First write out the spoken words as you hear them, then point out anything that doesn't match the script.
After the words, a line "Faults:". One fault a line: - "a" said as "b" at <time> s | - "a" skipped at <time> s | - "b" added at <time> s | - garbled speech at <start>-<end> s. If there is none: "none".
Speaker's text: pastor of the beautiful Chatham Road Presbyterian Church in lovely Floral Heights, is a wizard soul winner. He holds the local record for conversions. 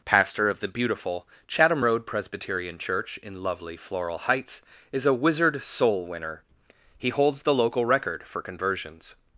pastor of the beautiful Chatham Road Presbyterian Church in lovely Floral Heights, is a wizard soul winner. He holds the local record for conversions.
Faults:
none